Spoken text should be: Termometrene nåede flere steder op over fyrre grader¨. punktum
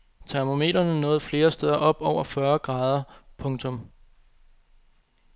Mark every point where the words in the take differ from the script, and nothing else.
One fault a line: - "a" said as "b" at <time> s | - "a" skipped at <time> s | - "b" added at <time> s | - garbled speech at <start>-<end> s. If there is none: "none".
none